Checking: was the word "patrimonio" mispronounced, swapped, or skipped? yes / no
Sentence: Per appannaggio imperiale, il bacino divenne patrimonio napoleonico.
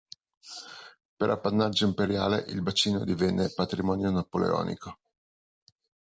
no